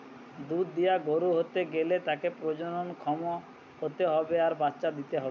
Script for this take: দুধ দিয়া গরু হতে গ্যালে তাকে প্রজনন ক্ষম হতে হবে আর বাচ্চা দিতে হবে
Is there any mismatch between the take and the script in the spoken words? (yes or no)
no